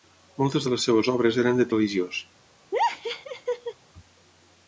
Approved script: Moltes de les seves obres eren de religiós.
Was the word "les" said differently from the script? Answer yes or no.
no